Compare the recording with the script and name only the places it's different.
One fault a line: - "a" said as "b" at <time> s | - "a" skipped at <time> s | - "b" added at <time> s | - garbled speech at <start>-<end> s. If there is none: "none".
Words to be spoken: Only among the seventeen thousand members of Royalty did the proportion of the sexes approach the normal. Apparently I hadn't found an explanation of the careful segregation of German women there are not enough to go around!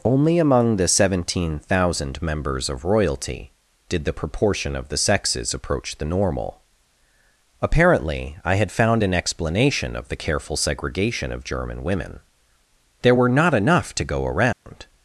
- "hadn't" said as "had" at 8.6 s
- "are" said as "were" at 13.1 s